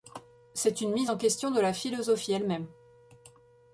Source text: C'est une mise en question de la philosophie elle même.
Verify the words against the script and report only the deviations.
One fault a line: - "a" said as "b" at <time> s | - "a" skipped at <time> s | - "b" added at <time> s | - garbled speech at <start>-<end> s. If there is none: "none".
none